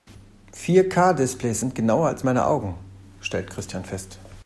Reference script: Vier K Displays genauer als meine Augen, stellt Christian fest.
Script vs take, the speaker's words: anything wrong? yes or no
yes